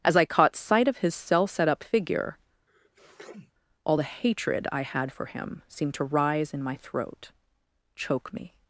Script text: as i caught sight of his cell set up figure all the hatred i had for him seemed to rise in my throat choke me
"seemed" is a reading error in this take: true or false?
false